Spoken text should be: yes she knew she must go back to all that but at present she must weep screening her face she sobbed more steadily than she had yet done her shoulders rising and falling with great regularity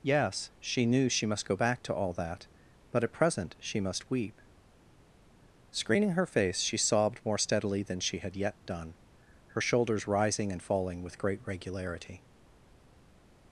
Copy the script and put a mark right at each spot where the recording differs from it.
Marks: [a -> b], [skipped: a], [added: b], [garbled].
yes she knew she must go back to all that but at present she must weep screening her face she sobbed more steadily than she had yet done her shoulders rising and falling with great regularity